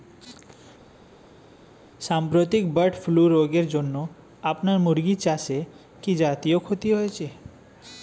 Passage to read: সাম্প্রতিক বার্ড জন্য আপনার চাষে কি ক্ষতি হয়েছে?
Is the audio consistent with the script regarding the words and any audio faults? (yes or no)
no